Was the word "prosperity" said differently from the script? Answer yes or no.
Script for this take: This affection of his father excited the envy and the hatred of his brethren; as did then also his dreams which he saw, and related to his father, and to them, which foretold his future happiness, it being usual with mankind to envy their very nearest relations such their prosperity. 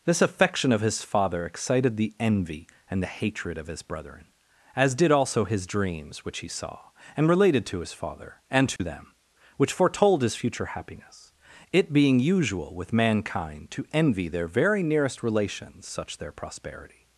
no